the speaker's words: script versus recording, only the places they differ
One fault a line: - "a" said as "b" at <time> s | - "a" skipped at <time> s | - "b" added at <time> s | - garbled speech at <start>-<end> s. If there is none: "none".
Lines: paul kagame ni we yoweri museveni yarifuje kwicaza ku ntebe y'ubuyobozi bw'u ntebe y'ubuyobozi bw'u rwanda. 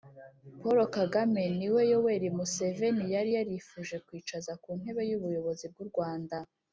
- "yari" added at 3.1 s
- "ntebe y'ubuyobozi bw'u" skipped at 5.9 s